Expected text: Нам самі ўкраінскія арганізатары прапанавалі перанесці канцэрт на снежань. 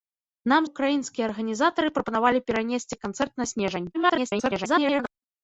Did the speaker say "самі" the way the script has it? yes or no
no